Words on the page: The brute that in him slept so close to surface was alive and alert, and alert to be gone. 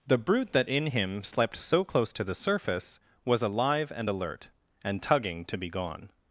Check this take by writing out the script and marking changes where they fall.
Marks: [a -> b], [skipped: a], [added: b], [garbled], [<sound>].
The brute that in him slept so close to [added: the] surface was alive and alert, and [alert -> tugging] to be gone.